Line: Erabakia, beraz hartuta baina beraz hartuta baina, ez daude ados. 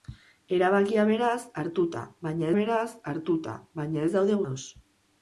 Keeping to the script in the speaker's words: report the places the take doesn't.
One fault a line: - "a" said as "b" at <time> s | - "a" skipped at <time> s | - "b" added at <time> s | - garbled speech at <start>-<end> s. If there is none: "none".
none